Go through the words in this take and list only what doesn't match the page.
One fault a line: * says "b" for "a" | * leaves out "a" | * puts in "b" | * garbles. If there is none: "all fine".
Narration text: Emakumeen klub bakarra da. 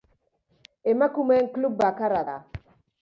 all fine